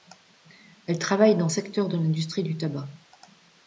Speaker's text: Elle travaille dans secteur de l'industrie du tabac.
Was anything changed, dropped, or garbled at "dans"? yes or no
no